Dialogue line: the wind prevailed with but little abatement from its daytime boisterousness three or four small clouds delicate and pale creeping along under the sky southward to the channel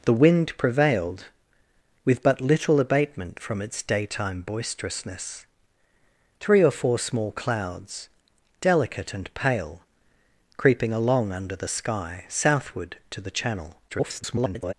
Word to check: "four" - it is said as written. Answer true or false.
true